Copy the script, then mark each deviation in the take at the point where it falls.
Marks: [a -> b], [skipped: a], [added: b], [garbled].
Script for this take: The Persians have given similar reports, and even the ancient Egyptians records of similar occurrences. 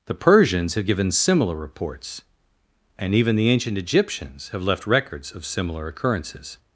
The Persians have given similar reports, and even the ancient Egyptians [added: have left] records of similar occurrences.